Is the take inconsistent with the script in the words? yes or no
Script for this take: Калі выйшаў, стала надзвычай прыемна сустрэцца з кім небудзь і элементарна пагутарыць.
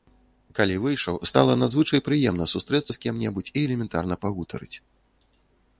no